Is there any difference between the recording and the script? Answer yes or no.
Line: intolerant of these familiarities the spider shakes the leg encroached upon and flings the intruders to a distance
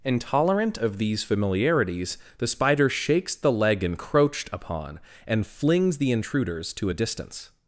no